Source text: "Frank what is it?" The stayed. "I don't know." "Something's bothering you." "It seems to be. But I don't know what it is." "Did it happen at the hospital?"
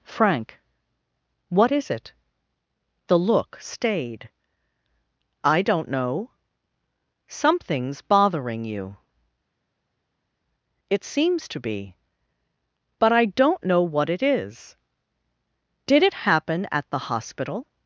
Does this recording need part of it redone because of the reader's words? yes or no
yes